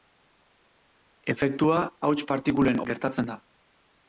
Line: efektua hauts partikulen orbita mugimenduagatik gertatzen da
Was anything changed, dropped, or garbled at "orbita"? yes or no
yes